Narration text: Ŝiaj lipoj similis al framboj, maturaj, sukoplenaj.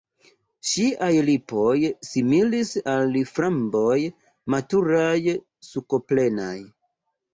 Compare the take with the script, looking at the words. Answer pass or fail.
pass